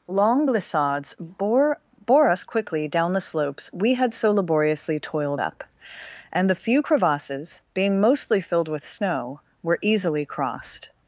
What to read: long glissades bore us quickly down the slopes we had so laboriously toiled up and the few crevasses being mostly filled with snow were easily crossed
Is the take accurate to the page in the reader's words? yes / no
no